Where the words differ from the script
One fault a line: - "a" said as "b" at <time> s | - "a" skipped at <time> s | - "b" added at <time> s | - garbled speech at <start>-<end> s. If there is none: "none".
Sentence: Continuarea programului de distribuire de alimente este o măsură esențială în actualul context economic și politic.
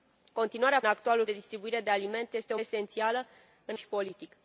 - "programului" said as "actualul" at 0.8 s
- "măsură" skipped at 2.6 s
- "actualul context economic" skipped at 3.8 s